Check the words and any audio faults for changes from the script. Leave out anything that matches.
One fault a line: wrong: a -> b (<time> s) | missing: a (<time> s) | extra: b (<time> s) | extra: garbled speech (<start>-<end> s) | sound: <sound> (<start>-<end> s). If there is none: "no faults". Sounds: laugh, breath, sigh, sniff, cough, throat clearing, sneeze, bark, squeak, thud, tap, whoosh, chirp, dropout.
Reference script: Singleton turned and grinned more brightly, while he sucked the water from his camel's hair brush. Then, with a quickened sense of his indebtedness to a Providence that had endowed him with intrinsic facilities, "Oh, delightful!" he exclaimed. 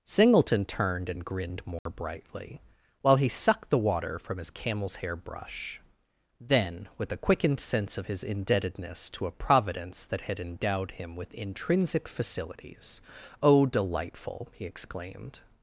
sound: dropout (1.8-1.9 s)